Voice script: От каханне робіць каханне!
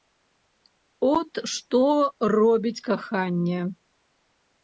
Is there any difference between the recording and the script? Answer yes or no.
yes